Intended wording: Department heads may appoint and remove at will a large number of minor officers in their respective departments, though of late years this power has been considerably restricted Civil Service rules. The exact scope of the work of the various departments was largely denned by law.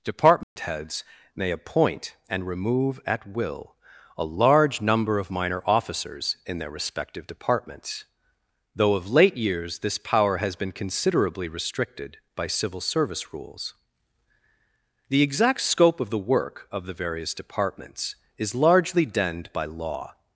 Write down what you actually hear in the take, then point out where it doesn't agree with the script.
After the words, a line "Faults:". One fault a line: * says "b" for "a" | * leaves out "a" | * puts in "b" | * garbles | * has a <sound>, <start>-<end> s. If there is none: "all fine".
Department heads may appoint and remove at will a large number of minor officers in their respective departments, though of late years this power has been considerably restricted by Civil Service rules. The exact scope of the work of the various departments is largely denned by law.
Faults:
* has a dropout, 0.4-0.6 s
* puts in "by"
* says "is" for "was"